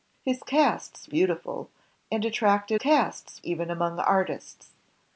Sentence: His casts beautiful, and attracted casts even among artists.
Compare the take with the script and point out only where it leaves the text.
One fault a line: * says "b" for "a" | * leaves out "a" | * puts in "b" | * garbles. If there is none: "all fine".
all fine